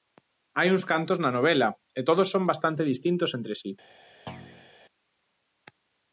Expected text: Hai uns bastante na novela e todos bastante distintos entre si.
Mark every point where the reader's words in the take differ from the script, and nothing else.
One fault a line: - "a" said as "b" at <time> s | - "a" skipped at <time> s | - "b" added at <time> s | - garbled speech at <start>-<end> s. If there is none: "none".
- "bastante" said as "cantos" at 0.9 s
- "son" added at 2.3 s